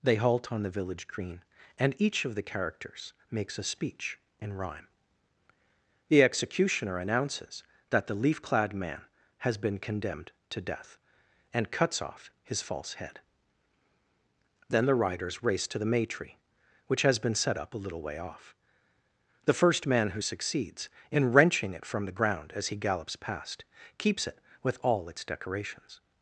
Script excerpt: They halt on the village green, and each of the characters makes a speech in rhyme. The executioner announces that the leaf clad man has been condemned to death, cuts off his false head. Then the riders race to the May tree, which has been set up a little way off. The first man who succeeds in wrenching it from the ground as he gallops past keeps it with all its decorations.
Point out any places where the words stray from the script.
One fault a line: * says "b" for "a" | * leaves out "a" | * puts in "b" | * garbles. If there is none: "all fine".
* puts in "and"